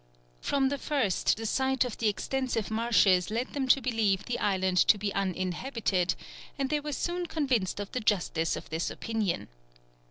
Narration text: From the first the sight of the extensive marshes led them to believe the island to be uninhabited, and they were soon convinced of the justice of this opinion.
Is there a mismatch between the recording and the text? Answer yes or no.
no